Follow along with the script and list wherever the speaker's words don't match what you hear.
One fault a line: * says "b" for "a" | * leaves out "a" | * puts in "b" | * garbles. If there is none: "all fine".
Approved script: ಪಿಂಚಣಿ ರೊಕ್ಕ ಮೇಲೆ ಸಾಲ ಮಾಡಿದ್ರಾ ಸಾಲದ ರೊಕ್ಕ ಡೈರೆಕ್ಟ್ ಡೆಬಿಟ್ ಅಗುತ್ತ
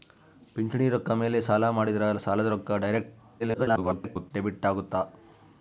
* garbles